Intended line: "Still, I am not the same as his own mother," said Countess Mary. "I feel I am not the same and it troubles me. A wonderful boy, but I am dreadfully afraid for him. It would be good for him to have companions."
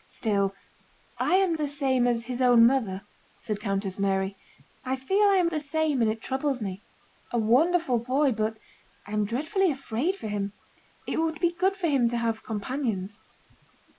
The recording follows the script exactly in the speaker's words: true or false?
false